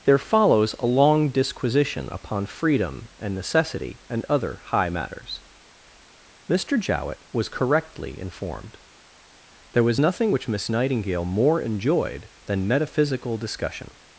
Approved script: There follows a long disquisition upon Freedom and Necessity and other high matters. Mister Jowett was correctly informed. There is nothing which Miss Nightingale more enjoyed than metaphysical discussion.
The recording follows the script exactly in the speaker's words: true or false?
false